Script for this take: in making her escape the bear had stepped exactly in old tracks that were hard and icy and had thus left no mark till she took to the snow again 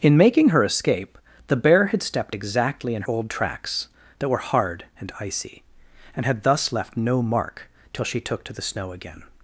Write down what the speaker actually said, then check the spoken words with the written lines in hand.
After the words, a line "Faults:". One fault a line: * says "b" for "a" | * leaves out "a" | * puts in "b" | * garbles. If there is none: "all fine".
in making her escape the bear had stepped exactly in old tracks that were hard and icy and had thus left no mark till she took to the snow again
Faults:
all fine